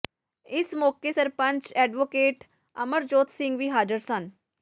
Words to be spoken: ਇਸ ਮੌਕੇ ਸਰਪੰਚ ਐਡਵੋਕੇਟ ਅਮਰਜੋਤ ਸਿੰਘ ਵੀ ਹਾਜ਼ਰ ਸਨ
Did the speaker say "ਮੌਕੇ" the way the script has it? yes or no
yes